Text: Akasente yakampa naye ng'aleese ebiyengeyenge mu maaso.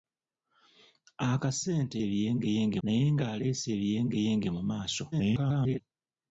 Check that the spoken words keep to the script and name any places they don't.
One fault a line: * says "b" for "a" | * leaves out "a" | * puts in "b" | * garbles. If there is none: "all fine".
* says "ebiyengeyenge" for "yakampa"
* garbles